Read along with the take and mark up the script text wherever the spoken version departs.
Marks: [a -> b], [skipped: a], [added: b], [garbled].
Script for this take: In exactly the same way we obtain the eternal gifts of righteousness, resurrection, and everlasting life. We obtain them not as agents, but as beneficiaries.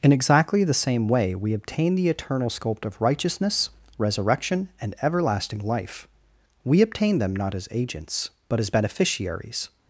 In exactly the same way we obtain the eternal [gifts -> sculpt] of righteousness, resurrection, and everlasting life. We obtain them not as agents, but as beneficiaries.